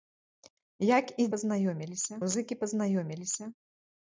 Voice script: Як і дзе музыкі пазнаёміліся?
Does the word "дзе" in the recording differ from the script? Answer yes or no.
yes